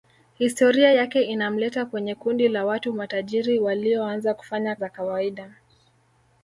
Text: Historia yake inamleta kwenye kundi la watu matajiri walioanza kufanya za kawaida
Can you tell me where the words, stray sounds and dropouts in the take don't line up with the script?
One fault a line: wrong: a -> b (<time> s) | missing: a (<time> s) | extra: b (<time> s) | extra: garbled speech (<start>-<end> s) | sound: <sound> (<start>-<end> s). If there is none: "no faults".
no faults